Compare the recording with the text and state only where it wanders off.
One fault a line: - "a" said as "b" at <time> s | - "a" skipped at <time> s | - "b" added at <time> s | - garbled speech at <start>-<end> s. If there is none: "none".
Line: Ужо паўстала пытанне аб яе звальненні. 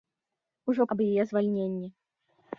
- "паўстала пытанне" skipped at 0.9 s